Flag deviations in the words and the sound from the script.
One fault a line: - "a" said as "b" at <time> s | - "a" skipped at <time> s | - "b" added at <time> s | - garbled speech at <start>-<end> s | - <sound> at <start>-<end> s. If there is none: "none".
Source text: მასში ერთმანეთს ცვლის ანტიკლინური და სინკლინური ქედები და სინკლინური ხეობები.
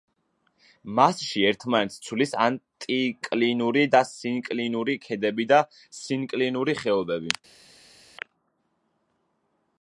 none